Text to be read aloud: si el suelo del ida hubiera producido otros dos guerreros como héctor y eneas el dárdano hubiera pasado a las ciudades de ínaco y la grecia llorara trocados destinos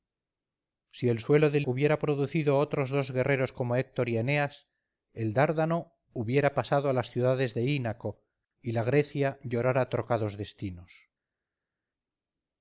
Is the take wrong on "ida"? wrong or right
wrong